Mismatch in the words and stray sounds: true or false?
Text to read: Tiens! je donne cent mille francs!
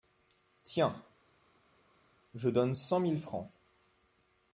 false